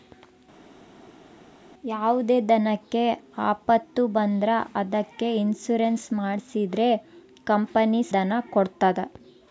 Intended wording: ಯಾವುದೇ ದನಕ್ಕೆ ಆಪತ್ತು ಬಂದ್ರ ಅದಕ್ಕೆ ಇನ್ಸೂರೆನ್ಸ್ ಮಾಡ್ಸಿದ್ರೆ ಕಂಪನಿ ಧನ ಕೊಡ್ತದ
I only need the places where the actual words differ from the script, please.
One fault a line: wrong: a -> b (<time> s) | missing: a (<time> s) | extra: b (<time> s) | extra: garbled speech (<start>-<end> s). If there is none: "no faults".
no faults